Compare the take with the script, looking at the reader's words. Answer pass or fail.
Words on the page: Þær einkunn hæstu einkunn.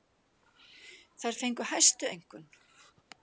fail